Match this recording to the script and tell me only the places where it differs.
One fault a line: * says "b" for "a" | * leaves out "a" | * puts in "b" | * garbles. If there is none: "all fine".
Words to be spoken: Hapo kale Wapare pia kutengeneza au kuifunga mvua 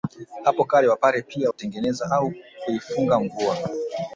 all fine